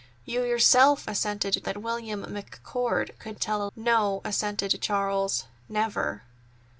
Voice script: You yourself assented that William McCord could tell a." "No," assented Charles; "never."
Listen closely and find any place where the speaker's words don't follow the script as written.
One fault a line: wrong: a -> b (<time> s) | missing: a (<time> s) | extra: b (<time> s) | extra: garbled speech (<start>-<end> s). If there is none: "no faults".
no faults